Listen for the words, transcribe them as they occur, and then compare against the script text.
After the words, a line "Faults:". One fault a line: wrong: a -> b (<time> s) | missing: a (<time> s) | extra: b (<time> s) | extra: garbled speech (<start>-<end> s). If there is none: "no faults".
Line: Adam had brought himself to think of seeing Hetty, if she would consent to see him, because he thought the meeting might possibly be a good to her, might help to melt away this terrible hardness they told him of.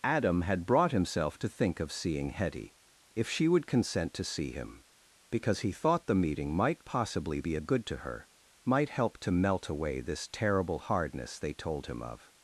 Adam had brought himself to think of seeing Hetty, if she would consent to see him, because he thought the meeting might possibly be a good to her, might help to melt away this terrible hardness they told him of.
Faults:
no faults